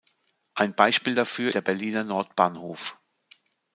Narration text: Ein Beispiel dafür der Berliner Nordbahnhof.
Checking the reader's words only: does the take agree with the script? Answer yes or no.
yes